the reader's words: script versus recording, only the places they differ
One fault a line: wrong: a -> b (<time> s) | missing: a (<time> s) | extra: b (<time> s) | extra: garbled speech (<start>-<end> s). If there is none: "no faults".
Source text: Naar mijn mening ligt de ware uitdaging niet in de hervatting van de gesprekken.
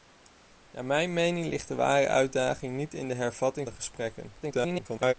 missing: van (3.7 s)
extra: garbled speech (4.4-5.1 s)